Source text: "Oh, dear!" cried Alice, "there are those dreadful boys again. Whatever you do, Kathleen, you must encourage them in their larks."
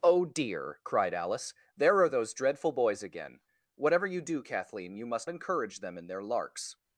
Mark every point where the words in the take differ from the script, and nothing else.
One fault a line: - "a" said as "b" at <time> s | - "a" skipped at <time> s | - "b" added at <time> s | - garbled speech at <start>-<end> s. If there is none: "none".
none